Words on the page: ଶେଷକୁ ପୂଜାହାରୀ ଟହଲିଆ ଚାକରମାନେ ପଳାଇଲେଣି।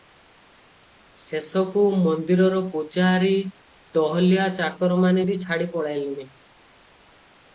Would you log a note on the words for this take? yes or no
yes